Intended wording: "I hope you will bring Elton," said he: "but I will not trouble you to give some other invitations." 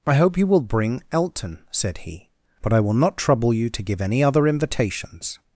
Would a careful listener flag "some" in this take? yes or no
yes